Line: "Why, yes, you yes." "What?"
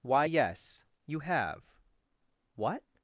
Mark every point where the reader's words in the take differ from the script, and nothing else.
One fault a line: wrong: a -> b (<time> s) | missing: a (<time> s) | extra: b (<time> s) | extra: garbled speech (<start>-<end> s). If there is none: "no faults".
wrong: yes -> have (1.2 s)